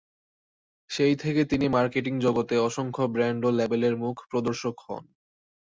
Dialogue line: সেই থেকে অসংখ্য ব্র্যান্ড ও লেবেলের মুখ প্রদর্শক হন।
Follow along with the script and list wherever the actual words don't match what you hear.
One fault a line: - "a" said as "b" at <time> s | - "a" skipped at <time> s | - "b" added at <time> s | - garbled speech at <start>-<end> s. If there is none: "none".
- "তিনি মার্কেটিং জগতে" added at 1.4 s